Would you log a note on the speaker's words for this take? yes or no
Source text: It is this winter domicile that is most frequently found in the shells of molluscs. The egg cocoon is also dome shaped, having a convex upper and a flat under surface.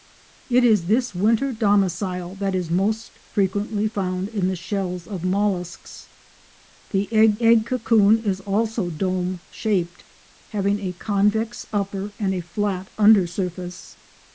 yes